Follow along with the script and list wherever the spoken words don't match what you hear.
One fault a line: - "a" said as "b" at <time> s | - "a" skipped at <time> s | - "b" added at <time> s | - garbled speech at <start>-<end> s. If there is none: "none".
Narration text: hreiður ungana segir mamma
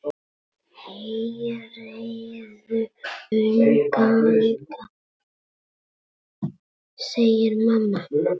none